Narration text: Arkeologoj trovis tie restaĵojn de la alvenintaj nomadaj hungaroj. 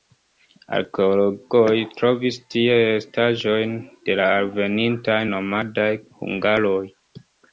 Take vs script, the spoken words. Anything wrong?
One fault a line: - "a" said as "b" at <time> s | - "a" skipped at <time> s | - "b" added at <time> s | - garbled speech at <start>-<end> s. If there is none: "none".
none